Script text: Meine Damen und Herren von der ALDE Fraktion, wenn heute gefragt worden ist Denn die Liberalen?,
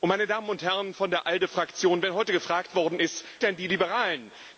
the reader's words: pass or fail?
pass